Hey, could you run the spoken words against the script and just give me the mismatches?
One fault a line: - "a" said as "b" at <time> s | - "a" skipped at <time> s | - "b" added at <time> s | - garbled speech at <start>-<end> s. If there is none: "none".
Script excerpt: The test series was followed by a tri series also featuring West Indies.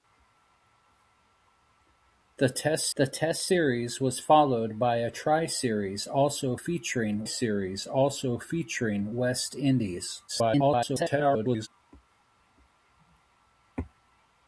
- "the test" added at 2.9 s
- "series also featuring" added at 7.2 s
- garbled speech at 10.3-11.7 s